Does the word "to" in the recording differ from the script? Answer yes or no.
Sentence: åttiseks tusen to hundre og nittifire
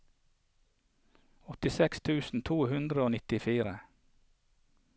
no